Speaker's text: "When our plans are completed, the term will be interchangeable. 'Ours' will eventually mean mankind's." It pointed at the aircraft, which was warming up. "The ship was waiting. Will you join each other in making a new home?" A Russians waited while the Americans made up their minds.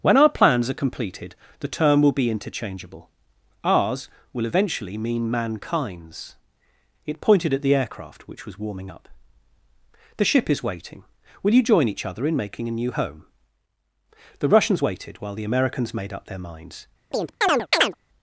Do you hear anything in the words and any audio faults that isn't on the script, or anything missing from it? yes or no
yes